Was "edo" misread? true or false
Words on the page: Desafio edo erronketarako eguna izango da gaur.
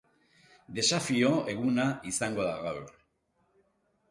true